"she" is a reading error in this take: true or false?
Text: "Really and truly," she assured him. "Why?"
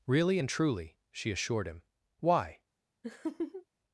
false